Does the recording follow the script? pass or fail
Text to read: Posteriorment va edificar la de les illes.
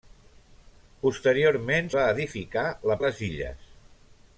pass